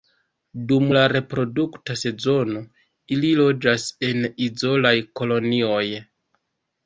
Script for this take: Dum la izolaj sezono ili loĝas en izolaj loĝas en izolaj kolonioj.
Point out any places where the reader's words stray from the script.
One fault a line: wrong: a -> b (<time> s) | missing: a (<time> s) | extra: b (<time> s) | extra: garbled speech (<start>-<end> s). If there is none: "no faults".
wrong: izolaj -> reprodukta (1.1 s)
missing: loĝas en izolaj (5.0 s)